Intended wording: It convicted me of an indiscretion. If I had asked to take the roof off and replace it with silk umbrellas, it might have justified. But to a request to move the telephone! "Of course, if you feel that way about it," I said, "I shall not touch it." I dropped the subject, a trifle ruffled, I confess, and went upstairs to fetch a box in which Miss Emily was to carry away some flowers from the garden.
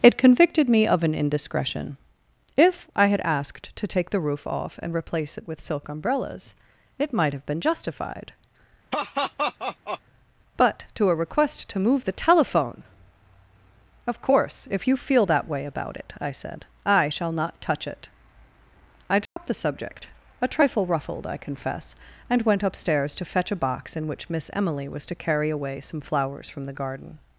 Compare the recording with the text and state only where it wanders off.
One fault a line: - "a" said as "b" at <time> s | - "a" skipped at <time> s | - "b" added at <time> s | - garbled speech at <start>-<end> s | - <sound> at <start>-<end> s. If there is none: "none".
- "been" added at 7.5 s
- laugh at 8.9-10.0 s
- dropout at 19.3-19.4 s